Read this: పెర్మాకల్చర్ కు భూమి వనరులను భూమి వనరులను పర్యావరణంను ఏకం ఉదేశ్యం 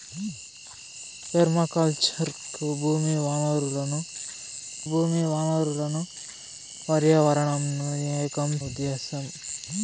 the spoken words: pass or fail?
pass